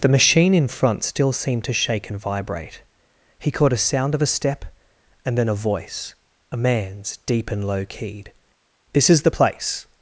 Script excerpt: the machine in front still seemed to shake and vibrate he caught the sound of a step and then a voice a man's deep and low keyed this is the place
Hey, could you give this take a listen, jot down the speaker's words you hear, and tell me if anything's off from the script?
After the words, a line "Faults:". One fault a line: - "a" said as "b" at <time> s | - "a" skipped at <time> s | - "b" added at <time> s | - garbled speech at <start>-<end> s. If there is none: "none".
the machine in front still seemed to shake and vibrate he caught a sound of a step and then a voice a man's deep and low keyed this is the place
Faults:
- "the" said as "a" at 3.7 s